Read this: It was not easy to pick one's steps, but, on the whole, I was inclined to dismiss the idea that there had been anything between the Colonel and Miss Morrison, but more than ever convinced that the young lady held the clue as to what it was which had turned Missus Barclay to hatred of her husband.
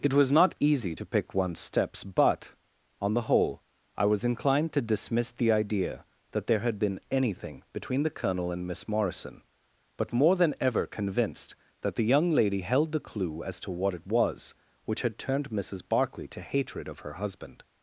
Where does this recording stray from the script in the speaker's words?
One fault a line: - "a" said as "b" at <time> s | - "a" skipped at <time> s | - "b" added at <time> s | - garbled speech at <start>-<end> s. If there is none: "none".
none